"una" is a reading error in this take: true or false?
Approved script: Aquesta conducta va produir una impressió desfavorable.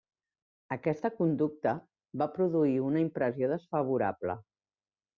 false